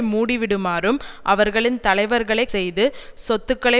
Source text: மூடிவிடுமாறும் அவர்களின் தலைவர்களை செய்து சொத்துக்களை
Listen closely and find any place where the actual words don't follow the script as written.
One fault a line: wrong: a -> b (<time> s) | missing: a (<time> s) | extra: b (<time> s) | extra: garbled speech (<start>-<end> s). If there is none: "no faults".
no faults